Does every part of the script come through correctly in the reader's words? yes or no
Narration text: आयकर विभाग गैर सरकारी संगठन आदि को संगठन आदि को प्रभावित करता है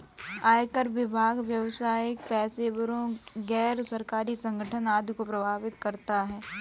no